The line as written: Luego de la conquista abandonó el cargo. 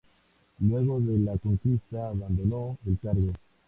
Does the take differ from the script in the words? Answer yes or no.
no